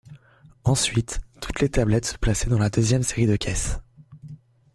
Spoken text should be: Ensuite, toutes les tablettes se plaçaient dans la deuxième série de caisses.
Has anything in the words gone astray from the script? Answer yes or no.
no